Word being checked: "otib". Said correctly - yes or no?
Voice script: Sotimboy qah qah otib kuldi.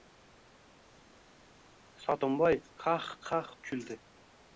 no